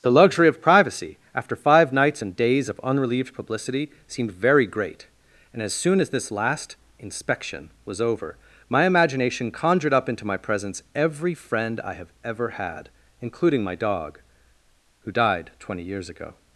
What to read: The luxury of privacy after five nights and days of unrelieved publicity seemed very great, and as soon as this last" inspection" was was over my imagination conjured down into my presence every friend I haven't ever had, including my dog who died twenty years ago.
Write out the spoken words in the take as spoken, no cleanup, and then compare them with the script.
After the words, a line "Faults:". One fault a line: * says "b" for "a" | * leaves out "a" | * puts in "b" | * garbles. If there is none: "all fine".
The luxury of privacy after five nights and days of unrelieved publicity seemed very great, and as soon as this last" inspection" was over my imagination conjured up into my presence every friend I have ever had, including my dog who died twenty years ago.
Faults:
* leaves out "was"
* says "up" for "down"
* says "have" for "haven't"